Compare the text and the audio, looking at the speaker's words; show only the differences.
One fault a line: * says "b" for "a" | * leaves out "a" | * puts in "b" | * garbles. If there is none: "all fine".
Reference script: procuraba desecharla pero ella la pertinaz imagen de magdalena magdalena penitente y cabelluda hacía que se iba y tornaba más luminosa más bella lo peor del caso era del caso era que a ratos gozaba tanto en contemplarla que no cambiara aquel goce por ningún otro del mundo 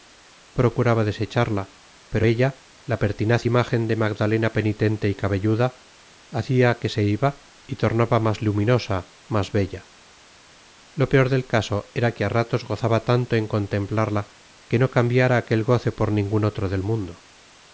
* leaves out "magdalena"
* leaves out "del caso era"